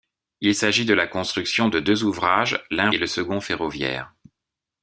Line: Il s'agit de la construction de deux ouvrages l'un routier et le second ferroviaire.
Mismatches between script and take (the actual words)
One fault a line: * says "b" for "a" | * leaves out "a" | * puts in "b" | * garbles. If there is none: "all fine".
* leaves out "routier"